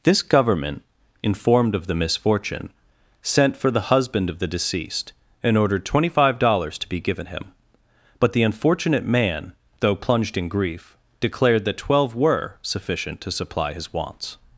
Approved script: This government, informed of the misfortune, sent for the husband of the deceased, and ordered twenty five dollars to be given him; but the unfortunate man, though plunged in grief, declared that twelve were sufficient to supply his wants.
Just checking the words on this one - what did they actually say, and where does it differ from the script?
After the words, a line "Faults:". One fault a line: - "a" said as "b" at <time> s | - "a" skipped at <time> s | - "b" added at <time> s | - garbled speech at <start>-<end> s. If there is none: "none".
This government, informed of the misfortune, sent for the husband of the deceased, and ordered twenty five dollars to be given him; but the unfortunate man, though plunged in grief, declared that twelve were sufficient to supply his wants.
Faults:
none